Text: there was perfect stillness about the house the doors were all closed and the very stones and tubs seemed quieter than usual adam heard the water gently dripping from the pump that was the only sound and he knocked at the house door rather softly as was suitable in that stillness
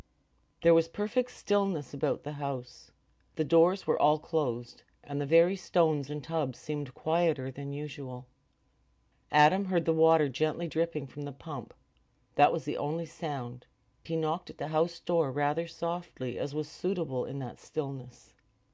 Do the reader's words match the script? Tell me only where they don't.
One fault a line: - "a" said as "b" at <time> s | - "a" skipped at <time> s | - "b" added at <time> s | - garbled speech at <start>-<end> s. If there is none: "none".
- "and" skipped at 13.7 s